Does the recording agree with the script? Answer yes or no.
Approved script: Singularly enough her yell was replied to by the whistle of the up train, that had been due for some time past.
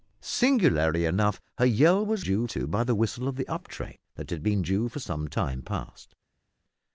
no